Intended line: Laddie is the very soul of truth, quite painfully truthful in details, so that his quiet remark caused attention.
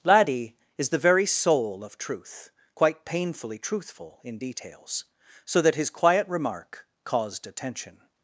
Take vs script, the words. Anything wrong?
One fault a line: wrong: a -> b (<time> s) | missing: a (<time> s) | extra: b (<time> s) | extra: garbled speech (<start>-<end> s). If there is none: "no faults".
no faults